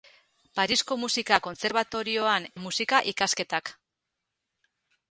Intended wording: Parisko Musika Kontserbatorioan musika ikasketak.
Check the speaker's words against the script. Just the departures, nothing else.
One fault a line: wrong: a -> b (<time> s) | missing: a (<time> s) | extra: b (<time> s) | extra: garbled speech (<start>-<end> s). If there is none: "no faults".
no faults